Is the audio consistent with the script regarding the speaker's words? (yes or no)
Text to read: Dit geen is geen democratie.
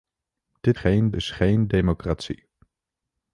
yes